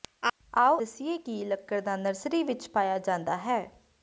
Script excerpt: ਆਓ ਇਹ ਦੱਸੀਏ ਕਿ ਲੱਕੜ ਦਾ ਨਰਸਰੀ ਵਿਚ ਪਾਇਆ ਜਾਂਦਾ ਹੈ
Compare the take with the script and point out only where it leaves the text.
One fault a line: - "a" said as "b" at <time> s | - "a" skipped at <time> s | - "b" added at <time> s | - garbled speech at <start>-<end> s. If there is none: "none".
- "ਇਹ" skipped at 0.8 s